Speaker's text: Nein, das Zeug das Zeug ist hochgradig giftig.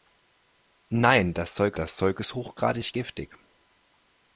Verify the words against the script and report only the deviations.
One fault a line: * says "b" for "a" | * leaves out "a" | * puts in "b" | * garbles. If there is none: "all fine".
all fine